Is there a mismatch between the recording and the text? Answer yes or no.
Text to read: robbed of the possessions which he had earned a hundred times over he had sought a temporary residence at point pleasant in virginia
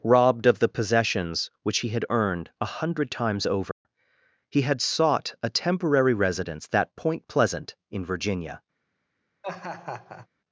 yes